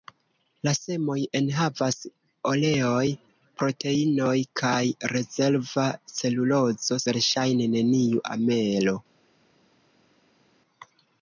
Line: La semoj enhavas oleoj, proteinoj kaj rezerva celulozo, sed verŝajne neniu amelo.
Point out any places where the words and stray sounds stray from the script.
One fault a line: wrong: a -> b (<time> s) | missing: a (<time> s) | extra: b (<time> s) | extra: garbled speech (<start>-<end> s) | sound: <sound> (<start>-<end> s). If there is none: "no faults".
missing: sed (7.0 s)